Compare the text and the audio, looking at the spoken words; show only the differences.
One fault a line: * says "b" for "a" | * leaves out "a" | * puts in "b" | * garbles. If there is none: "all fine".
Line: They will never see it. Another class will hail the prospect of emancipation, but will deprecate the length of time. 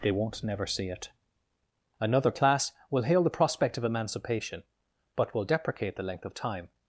* says "won't" for "will"